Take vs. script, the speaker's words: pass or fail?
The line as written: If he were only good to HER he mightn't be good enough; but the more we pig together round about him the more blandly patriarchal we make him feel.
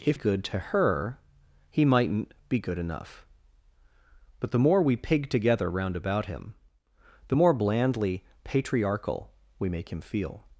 fail